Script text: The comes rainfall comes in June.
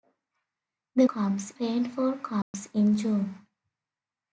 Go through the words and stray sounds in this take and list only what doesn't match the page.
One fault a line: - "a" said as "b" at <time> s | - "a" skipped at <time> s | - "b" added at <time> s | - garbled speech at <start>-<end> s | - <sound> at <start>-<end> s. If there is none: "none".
- dropout at 2.4-2.5 s